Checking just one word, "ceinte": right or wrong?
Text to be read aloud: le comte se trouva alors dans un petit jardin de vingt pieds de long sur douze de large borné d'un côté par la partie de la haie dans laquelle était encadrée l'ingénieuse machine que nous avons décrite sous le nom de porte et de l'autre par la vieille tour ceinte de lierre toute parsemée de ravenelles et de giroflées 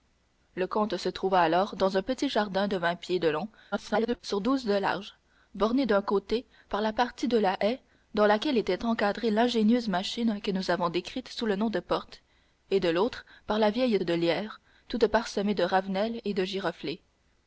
wrong